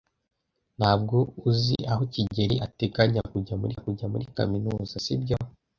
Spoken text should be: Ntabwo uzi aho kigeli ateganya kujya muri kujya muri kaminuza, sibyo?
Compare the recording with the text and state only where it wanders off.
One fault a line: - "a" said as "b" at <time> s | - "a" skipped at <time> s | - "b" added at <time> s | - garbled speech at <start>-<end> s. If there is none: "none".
none